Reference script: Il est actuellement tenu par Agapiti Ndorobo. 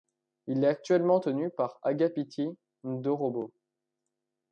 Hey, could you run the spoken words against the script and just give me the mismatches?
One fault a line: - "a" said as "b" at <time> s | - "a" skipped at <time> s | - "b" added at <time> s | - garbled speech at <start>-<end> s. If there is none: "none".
none